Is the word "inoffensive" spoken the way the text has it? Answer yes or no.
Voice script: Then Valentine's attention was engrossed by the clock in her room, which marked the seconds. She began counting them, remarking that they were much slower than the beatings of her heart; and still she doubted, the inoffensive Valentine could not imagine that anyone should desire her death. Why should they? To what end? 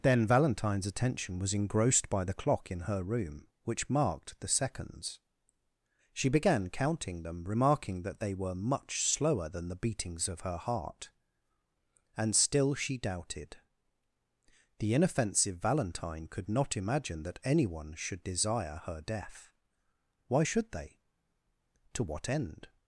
yes